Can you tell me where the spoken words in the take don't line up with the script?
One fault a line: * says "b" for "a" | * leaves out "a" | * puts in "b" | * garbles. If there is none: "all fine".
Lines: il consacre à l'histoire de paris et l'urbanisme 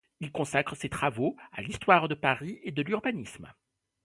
* puts in "ses travaux"
* puts in "de"